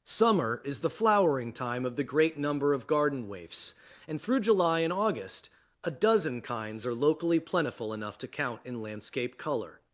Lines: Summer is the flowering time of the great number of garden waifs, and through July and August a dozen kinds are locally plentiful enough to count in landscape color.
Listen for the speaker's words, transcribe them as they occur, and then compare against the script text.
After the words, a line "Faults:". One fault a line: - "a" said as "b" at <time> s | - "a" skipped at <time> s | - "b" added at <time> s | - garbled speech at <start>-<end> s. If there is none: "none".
Summer is the flowering time of the great number of garden waifs, and through July and August a dozen kinds are locally plentiful enough to count in landscape color.
Faults:
none